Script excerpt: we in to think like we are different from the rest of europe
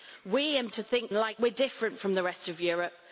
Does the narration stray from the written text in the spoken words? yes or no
no